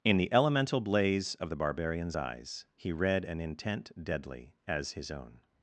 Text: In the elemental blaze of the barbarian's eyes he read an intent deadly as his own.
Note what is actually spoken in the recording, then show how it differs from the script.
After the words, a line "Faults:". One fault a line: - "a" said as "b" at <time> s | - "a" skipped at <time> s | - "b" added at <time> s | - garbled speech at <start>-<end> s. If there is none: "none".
In the elemental blaze of the barbarian's eyes he read an intent deadly as his own.
Faults:
none